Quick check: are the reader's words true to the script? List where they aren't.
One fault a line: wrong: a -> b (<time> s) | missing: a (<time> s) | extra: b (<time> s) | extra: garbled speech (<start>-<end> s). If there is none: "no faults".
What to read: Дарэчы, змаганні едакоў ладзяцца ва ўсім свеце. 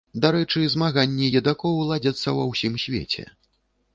no faults